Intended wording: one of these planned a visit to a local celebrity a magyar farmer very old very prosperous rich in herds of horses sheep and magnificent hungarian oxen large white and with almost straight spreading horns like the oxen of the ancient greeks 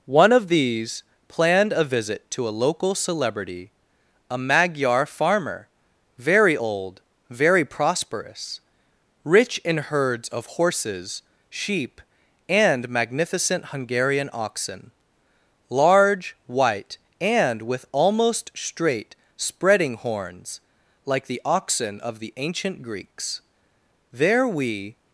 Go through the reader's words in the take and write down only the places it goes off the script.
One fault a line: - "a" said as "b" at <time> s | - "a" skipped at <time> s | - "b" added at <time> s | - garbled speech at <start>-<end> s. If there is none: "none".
- "there we" added at 24.1 s